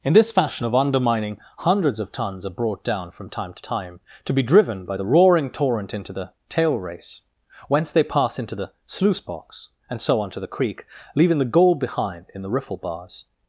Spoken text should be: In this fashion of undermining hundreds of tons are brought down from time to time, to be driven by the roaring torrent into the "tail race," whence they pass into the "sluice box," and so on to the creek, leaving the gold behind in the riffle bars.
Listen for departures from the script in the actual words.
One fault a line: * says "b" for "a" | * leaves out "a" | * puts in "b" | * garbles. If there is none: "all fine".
all fine